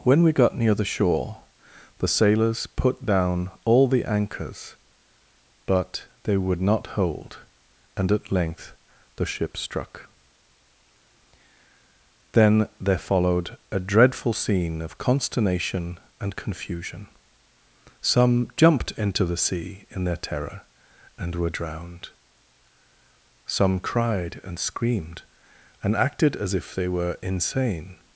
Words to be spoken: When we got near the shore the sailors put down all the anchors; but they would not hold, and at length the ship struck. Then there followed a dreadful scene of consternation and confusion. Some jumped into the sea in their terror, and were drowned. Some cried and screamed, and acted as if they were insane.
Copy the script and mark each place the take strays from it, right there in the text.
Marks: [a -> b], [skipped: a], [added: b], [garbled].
When we got near the shore the sailors put down all the anchors; but they would not hold, and at length the ship struck. Then there followed a dreadful scene of consternation and confusion. Some jumped into the sea in their terror, and were drowned. Some cried and screamed, and acted as if they were insane.